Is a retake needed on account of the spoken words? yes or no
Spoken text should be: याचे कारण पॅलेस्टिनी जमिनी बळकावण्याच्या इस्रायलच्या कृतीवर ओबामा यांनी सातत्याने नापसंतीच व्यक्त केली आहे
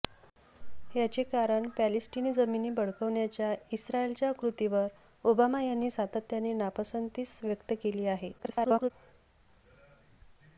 yes